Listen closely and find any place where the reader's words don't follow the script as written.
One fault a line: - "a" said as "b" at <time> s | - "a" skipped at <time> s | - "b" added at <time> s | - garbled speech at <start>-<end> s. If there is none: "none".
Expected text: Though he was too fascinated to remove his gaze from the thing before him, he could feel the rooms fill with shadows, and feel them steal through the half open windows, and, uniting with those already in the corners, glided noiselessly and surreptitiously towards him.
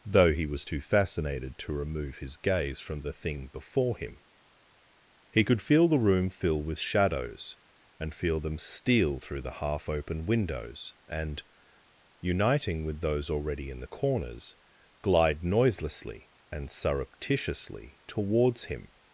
- "rooms" said as "room" at 6.0 s
- "glided" said as "glide" at 15.0 s